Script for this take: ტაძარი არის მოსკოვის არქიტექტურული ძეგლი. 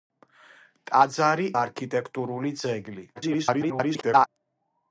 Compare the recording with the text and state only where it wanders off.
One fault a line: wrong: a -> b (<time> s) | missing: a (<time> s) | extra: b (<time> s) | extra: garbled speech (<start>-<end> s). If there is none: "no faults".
missing: არის მოსკოვის (1.4 s)
extra: garbled speech (3.2-4.3 s)